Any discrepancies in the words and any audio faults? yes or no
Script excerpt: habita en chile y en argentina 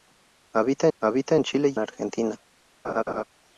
yes